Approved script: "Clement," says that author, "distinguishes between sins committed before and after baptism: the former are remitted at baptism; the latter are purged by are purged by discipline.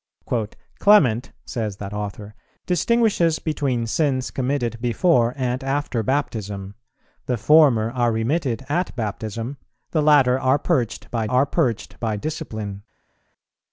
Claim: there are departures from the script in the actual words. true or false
false